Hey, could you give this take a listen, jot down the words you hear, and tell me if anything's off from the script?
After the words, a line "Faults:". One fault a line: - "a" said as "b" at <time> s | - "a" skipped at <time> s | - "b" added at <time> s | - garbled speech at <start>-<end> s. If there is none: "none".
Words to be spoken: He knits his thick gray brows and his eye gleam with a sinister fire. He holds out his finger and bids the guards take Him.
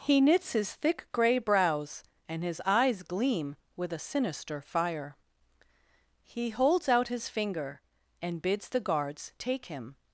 He knits his thick gray brows and his eyes gleam with a sinister fire. He holds out his finger and bids the guards take Him.
Faults:
- "eye" said as "eyes" at 2.6 s